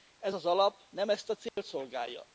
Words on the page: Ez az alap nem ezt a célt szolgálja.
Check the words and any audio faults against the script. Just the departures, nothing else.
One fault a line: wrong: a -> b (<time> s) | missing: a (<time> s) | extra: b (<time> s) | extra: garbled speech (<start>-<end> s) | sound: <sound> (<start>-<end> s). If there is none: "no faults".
sound: dropout (1.5-1.6 s)